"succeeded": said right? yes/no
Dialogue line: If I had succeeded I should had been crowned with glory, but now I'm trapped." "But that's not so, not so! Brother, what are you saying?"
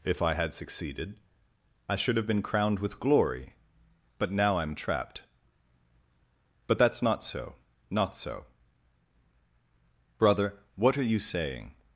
yes